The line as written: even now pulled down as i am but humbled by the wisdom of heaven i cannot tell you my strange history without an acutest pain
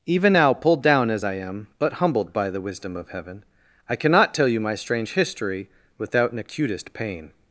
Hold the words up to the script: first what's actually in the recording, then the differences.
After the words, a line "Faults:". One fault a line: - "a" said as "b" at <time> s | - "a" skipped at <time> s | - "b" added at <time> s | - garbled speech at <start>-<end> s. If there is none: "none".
even now pulled down as i am but humbled by the wisdom of heaven i cannot tell you my strange history without an acutest pain
Faults:
none